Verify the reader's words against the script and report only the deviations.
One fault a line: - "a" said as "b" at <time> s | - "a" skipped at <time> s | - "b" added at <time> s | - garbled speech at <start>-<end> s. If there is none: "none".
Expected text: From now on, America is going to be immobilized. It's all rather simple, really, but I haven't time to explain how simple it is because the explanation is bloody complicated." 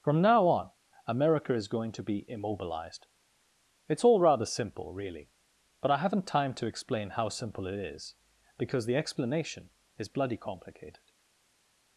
none